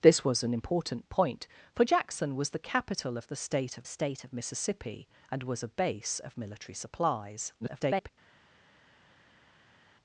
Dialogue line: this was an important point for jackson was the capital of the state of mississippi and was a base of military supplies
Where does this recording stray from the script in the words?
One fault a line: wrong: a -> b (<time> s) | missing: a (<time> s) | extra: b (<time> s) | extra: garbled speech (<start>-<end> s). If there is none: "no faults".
extra: state of (3.8 s)
extra: garbled speech (7.6-8.1 s)